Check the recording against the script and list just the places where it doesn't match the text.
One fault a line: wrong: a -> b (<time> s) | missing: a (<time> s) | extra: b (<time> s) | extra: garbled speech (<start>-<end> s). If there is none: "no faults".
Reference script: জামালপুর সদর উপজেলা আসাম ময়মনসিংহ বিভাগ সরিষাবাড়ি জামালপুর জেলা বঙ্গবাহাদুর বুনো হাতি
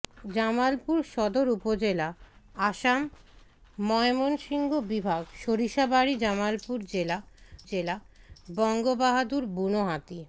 extra: জেলা (7.6 s)